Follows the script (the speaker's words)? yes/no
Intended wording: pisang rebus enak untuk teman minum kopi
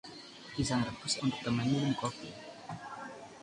no